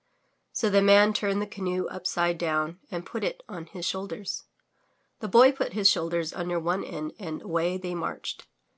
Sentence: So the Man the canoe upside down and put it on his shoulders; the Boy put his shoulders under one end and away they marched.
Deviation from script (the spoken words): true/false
true